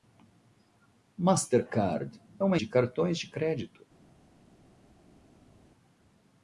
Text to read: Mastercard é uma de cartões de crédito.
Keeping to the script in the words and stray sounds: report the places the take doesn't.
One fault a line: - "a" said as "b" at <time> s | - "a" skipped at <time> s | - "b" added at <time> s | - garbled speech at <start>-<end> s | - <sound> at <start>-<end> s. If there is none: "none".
none